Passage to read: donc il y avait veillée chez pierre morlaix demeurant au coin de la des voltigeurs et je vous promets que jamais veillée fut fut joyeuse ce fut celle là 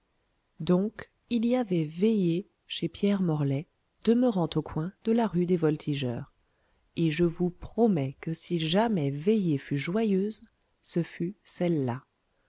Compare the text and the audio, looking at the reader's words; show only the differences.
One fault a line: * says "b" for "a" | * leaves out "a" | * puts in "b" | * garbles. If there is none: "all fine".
* puts in "rue"
* puts in "si"
* leaves out "fut"